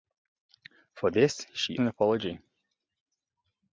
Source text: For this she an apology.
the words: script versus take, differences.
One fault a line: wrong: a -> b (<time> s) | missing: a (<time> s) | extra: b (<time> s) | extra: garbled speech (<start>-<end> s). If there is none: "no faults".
no faults